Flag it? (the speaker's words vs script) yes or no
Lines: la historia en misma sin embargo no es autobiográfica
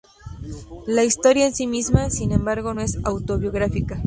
yes